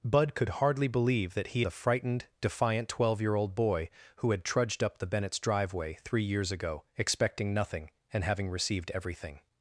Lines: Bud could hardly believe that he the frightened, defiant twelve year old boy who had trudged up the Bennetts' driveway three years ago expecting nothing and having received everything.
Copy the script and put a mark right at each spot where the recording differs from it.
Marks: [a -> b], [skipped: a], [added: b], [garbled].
Bud could hardly believe that he the frightened, defiant twelve year old boy who had trudged up the Bennetts' driveway three years ago expecting nothing and having received everything.